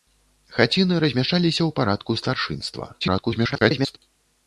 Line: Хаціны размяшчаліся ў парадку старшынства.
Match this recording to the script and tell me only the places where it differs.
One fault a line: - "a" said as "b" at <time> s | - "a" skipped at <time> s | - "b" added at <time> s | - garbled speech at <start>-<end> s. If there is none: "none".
- garbled speech at 3.0-4.0 s